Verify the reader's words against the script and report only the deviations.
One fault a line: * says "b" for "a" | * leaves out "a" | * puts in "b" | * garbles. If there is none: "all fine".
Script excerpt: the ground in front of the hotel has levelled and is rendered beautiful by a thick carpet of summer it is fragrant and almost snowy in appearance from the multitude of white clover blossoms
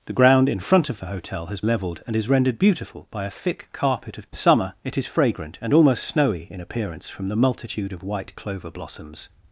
all fine